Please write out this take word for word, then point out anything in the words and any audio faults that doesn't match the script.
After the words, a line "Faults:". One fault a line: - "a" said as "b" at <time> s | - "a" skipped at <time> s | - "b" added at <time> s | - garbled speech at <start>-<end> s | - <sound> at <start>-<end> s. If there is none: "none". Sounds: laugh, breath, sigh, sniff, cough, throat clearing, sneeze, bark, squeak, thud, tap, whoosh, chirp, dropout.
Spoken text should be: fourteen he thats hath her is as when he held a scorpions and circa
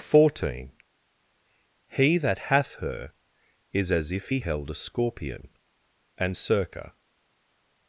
fourteen he that hath her is as if he held a scorpion and circa
Faults:
- "thats" said as "that" at 2.2 s
- "when" said as "if" at 4.1 s
- "scorpions" said as "scorpion" at 4.7 s